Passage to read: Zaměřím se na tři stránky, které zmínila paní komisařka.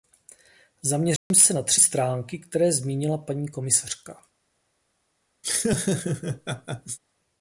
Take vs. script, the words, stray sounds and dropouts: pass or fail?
fail